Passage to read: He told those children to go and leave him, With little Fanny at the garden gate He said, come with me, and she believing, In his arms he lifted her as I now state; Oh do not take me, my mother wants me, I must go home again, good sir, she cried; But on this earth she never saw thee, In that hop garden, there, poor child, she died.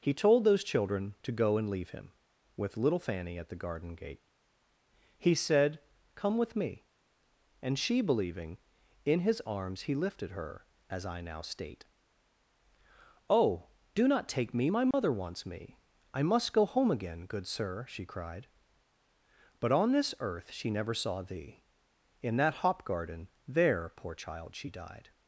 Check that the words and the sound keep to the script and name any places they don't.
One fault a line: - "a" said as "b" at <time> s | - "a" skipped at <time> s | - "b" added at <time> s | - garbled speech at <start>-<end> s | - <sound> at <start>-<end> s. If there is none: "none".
- dropout at 14.9-14.9 s